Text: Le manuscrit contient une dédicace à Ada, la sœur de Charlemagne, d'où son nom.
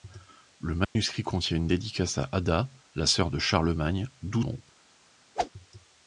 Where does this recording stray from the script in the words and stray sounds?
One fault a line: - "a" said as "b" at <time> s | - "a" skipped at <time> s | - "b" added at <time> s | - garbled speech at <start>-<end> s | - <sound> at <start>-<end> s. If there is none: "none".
- dropout at 0.8-1.0 s
- "son" skipped at 4.4 s
- whoosh at 5.4-5.5 s